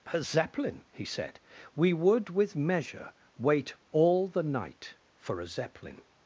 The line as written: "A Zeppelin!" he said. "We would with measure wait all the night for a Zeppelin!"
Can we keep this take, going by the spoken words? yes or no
yes